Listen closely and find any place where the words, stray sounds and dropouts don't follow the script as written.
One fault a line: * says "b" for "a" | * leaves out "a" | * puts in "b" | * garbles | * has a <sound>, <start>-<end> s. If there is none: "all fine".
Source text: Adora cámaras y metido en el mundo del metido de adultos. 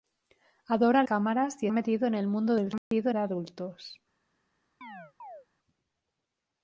* has a dropout, 2.8-2.9 s
* has a chirp, 4.8-5.5 s